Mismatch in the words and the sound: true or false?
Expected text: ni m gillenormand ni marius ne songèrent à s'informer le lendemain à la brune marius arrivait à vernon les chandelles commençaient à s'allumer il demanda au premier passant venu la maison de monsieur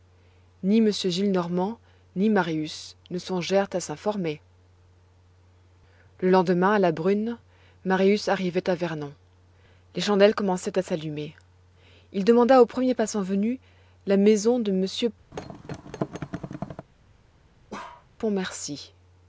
true